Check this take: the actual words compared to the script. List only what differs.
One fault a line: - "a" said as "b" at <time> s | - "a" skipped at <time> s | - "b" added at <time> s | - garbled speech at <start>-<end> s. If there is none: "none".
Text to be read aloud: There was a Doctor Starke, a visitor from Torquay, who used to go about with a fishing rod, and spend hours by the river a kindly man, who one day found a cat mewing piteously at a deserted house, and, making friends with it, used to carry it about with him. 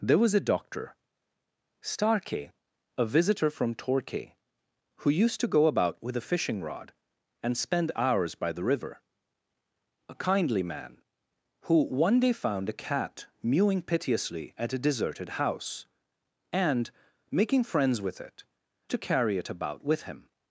- "used" skipped at 18.4 s